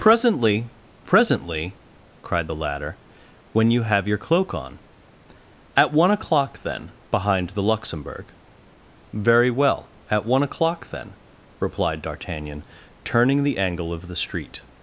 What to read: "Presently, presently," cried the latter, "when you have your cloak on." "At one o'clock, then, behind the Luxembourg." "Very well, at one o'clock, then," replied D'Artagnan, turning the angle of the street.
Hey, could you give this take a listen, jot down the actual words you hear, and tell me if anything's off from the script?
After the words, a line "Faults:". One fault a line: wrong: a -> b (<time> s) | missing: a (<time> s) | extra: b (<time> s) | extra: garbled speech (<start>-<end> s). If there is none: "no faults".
"Presently, presently," cried the latter, "when you have your cloak on." "At one o'clock, then, behind the Luxembourg." "Very well, at one o'clock, then," replied D'Artagnan, turning the angle of the street.
Faults:
no faults